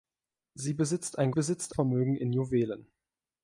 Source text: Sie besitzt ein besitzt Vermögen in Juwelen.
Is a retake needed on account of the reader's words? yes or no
no